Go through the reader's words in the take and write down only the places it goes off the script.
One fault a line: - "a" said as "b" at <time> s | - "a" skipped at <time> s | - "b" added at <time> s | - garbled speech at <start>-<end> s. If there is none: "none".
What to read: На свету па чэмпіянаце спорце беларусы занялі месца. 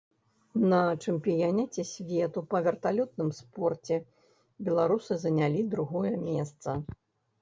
- "чэмпіянаце" added at 1.0 s
- "чэмпіянаце" said as "верталётным" at 2.7 s
- "другое" added at 5.8 s